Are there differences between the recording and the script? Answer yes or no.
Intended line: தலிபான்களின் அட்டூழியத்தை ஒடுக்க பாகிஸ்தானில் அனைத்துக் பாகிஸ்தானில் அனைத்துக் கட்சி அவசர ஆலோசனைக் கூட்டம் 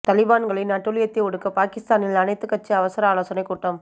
yes